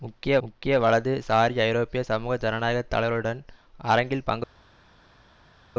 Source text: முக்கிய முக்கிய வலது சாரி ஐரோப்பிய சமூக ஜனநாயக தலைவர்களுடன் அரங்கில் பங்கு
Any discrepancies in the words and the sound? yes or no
no